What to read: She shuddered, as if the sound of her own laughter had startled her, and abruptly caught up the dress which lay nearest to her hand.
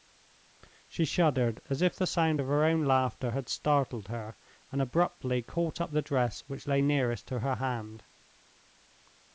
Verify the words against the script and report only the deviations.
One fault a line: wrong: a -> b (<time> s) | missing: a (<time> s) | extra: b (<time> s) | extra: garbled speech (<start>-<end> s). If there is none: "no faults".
no faults